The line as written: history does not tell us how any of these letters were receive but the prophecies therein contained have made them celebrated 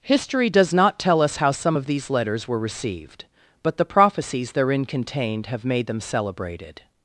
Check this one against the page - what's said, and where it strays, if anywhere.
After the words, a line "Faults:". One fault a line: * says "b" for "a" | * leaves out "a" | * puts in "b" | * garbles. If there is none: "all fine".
history does not tell us how some of these letters were received but the prophecies therein contained have made them celebrated
Faults:
* says "some" for "any"
* says "received" for "receive"